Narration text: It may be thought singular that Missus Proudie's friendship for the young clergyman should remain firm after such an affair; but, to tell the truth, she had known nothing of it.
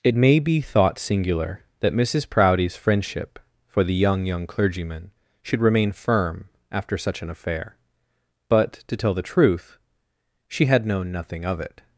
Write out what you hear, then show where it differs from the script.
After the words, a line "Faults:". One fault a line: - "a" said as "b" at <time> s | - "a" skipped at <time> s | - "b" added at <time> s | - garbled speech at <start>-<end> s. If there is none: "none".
It may be thought singular that Missus Proudie's friendship for the young young clergyman should remain firm after such an affair; but, to tell the truth, she had known nothing of it.
Faults:
- "young" added at 4.2 s